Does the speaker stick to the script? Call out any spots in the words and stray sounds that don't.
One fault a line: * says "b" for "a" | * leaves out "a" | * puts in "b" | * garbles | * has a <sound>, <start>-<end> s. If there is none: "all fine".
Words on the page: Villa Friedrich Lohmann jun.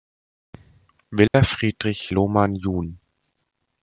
* has a dropout, 1.3-1.3 s